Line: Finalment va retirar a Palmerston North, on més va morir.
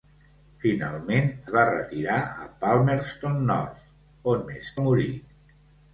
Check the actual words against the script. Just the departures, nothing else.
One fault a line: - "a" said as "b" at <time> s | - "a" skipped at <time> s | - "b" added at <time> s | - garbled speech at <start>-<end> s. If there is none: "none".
none